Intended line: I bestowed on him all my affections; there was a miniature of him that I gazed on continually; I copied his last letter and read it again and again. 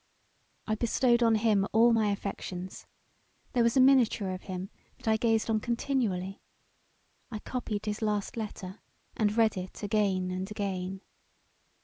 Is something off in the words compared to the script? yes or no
no